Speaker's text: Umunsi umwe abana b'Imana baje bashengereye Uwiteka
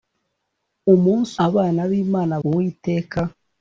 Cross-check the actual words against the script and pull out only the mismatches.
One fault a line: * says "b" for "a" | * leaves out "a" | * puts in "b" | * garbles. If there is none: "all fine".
* leaves out "umwe"
* leaves out "baje bashengereye"